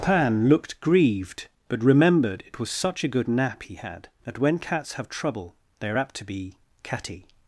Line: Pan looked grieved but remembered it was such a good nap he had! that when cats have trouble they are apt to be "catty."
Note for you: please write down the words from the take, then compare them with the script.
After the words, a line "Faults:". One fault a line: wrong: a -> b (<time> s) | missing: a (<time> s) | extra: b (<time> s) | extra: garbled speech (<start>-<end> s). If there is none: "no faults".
Pan looked grieved but remembered it was such a good nap he had! that when cats have trouble they are apt to be "catty."
Faults:
no faults